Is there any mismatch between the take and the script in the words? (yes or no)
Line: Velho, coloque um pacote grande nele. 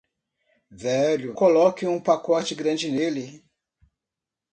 no